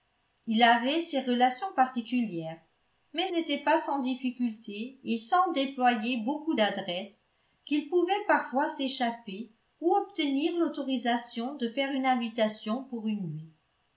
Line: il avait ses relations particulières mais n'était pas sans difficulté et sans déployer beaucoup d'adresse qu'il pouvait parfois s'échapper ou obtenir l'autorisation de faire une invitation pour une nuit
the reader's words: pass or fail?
pass